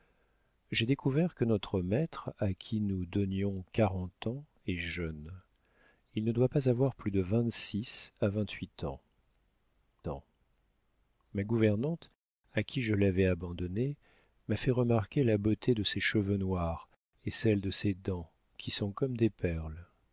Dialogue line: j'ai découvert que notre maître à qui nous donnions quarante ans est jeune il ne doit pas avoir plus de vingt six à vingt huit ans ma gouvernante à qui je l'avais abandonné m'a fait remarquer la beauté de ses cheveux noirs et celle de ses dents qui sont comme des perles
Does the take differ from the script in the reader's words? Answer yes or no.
yes